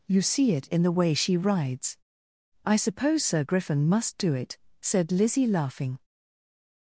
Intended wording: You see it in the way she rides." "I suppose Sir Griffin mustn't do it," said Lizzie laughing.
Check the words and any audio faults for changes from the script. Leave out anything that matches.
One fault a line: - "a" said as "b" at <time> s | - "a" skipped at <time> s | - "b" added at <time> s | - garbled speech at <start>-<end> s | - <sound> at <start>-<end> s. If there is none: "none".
- "mustn't" said as "must" at 3.9 s